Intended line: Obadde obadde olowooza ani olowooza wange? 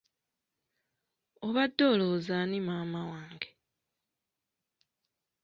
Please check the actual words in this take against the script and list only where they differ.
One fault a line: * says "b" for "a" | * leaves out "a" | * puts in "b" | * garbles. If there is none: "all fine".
* leaves out "obadde"
* says "maama" for "olowooza"